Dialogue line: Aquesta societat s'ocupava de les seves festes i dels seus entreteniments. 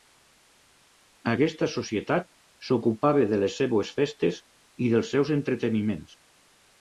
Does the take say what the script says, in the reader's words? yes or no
yes